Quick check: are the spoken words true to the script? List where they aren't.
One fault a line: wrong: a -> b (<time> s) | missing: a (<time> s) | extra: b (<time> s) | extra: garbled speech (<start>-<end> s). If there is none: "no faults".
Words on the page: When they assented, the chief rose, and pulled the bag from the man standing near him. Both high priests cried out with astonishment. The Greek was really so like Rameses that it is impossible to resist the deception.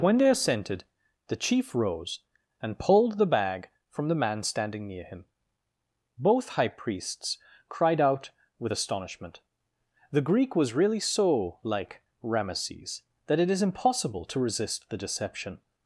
no faults